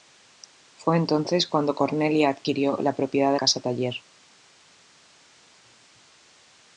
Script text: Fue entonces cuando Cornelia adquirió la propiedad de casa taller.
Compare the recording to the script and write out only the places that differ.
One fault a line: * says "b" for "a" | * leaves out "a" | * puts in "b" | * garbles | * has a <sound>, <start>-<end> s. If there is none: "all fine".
all fine